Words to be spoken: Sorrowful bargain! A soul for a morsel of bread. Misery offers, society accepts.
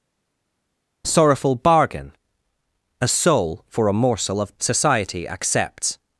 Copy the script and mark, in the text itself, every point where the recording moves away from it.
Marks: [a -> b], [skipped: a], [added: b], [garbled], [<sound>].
Sorrowful bargain! A soul for a morsel of [skipped: bread. Misery offers,] society accepts.